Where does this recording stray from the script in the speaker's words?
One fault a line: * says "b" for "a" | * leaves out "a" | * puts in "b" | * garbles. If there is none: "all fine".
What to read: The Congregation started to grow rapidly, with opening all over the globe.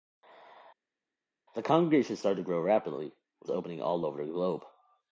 all fine